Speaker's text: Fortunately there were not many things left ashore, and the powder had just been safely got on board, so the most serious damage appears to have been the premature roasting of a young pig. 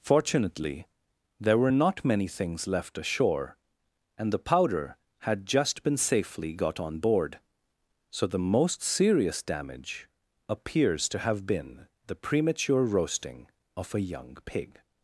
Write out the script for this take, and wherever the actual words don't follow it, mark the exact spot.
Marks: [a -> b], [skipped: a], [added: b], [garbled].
Fortunately there were not many things left ashore, and the powder had just been safely got on board, so the most serious damage appears to have been the premature roasting of a young pig.